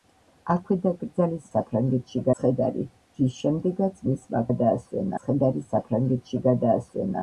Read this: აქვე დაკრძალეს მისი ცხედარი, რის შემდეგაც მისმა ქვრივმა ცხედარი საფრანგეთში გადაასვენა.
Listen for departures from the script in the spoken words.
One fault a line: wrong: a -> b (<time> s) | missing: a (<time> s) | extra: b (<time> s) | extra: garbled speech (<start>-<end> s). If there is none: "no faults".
wrong: მისი -> საფრანგეთში (1.5 s)
wrong: ქვრივმა -> გადაასვენა (4.5 s)